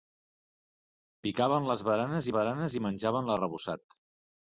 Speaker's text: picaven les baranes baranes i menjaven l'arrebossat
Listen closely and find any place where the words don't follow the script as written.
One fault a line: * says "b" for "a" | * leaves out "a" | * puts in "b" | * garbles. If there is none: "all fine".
all fine